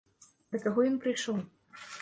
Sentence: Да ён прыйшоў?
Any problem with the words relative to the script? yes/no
yes